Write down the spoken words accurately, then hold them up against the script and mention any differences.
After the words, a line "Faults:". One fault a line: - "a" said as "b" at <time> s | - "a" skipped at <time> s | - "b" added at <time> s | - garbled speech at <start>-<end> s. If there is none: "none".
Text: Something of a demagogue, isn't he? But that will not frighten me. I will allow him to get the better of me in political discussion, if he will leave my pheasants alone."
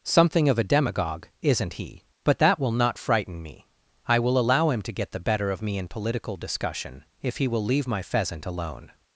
Something of a demagogue, isn't he? But that will not frighten me. I will allow him to get the better of me in political discussion, if he will leave my pheasant alone."
Faults:
- "pheasants" said as "pheasant" at 8.0 s